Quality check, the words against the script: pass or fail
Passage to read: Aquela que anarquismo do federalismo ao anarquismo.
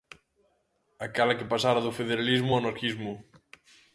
fail